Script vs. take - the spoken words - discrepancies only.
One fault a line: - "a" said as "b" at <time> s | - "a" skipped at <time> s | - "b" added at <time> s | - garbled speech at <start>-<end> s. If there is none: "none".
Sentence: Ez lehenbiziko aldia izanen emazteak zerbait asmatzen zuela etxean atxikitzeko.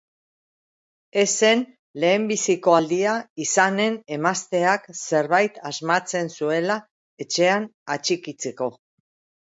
- "zen" added at 1.4 s